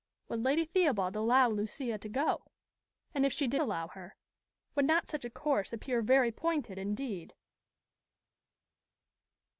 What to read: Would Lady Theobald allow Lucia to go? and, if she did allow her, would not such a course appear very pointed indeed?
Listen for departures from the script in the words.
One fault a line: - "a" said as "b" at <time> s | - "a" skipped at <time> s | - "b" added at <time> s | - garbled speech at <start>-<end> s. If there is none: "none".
none